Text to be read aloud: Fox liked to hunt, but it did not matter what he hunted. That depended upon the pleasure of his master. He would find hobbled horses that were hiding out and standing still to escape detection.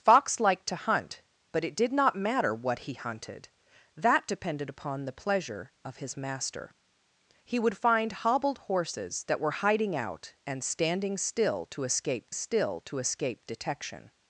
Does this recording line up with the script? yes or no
no